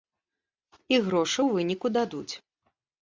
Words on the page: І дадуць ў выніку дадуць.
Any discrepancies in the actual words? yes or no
yes